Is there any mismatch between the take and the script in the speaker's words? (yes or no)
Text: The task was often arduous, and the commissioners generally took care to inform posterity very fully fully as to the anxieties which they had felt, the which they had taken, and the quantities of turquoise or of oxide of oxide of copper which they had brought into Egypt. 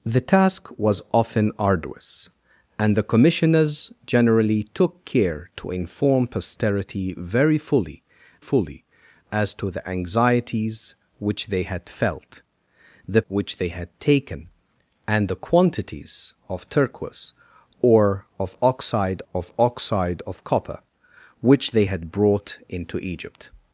no